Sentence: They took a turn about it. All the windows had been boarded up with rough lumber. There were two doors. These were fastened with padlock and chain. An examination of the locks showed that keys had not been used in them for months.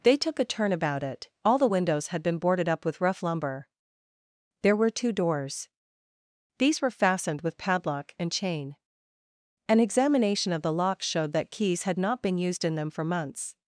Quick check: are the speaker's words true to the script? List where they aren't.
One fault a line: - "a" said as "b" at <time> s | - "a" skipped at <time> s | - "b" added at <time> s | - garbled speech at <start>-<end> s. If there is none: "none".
none